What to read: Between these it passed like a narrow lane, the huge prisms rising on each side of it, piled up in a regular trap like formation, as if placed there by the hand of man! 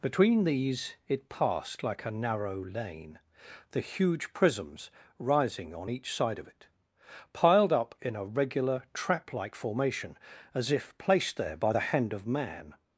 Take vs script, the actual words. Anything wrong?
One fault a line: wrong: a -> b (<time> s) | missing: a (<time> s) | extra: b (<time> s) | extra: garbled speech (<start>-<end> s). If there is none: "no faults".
no faults